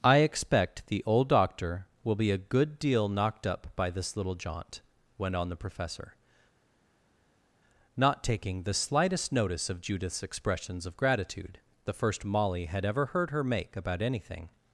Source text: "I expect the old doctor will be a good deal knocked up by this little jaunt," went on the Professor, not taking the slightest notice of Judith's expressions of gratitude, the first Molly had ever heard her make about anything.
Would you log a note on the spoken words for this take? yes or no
no